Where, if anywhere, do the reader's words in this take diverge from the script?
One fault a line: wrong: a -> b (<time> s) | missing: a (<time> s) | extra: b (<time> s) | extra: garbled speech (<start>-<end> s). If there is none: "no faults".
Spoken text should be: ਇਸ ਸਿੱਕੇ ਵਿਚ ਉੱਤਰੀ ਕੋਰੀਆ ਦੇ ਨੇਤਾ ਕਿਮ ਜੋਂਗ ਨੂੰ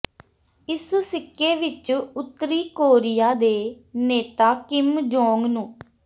no faults